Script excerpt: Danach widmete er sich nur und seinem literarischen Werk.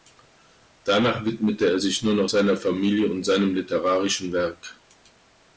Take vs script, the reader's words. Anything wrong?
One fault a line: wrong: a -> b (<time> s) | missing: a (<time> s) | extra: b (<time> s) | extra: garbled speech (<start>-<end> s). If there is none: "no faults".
extra: noch seiner Familie (2.1 s)